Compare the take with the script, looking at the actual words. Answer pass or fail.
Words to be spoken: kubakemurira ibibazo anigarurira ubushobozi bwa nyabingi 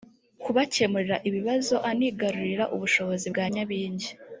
pass